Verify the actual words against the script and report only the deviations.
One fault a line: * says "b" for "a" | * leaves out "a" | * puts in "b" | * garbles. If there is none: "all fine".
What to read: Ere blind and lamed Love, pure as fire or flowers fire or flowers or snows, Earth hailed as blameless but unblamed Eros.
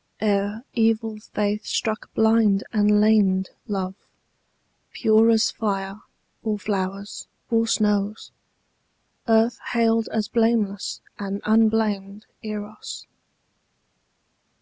* puts in "evil faith struck"
* leaves out "fire"
* leaves out "flowers or"
* says "and" for "but"